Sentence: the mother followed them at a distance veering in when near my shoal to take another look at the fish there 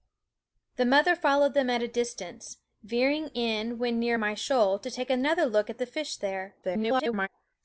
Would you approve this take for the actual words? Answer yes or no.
no